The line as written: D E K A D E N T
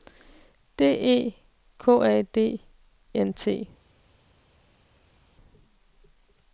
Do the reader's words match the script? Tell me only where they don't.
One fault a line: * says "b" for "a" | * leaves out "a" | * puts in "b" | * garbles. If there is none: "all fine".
* leaves out "E"